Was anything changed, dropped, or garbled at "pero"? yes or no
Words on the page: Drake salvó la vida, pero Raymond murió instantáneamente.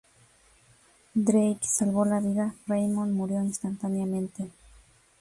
yes